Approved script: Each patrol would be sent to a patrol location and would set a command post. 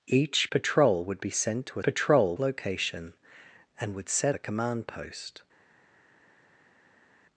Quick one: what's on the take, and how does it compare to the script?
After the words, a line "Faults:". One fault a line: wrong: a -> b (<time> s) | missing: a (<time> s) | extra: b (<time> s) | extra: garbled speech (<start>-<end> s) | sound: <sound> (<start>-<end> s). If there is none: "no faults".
Each patrol would be sent to a patrol location and would set a command post.
Faults:
no faults